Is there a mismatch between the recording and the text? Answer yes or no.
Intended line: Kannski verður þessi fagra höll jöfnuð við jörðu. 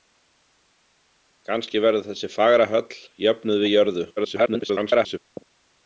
yes